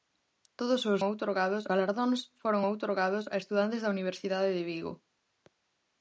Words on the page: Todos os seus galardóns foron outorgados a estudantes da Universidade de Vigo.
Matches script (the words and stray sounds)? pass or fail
fail